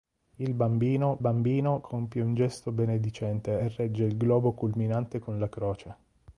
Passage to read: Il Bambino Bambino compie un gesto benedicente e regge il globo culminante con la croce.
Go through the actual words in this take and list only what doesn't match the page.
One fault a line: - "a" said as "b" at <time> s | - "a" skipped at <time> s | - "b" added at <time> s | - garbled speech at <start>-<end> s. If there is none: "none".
none